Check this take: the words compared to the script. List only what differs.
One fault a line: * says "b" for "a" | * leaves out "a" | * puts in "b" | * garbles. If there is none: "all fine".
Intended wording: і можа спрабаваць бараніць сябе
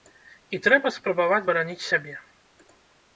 * says "трэба" for "можа"